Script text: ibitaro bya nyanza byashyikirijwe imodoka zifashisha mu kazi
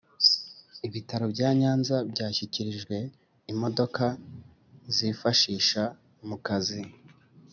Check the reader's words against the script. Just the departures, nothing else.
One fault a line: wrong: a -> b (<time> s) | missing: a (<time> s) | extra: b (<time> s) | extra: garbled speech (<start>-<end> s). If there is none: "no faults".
no faults